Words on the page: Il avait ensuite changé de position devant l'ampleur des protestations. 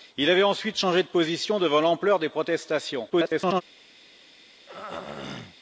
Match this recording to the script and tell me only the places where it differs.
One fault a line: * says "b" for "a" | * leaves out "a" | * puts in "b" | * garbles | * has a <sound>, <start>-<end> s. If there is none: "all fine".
* garbles
* has a throat clearing, 4.7-5.6 s